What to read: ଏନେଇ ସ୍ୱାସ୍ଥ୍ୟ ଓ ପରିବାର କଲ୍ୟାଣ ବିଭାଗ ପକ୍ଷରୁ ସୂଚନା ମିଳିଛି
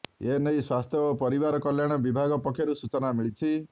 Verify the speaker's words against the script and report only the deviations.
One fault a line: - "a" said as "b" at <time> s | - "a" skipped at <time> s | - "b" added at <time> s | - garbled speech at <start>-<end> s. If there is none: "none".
none